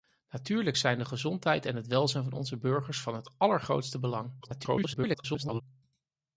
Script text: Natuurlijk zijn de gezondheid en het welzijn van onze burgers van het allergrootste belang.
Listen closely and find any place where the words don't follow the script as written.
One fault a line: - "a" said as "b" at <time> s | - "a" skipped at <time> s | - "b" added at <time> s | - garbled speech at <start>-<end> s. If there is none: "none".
- garbled speech at 4.4-5.6 s